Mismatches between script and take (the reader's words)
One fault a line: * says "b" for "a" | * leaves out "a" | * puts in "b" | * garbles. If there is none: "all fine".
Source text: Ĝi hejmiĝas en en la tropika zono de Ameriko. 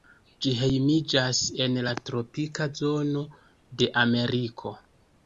* leaves out "en"